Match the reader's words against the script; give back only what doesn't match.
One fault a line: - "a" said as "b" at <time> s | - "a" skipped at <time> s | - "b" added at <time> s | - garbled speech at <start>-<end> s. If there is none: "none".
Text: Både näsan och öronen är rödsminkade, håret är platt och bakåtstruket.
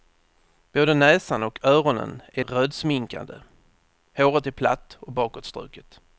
none